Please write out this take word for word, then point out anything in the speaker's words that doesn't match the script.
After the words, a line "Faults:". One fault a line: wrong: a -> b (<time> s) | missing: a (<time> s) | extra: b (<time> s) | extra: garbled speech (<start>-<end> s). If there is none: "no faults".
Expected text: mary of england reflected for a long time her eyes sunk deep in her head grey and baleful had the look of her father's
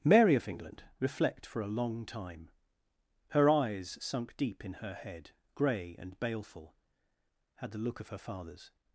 mary of england reflect for a long time her eyes sunk deep in her head grey and baleful had the look of her father's
Faults:
wrong: reflected -> reflect (1.0 s)